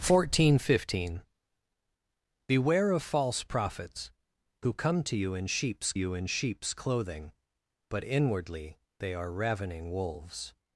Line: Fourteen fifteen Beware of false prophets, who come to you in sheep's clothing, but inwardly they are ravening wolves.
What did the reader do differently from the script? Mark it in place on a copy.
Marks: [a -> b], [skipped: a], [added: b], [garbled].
Fourteen fifteen Beware of false prophets, who come to you in sheep's [added: you in sheep's] clothing, but inwardly they are ravening wolves.